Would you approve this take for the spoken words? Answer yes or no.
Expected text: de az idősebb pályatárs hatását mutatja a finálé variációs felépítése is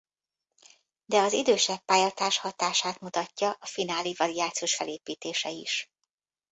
yes